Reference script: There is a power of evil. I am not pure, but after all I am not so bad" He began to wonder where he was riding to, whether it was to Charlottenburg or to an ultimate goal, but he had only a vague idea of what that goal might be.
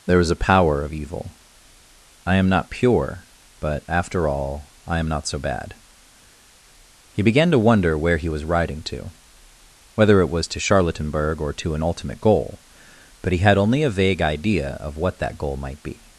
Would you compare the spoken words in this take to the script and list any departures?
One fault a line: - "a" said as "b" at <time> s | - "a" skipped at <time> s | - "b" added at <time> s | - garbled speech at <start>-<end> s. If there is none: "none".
none